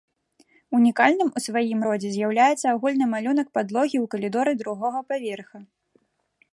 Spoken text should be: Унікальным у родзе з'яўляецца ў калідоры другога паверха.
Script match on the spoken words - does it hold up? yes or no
no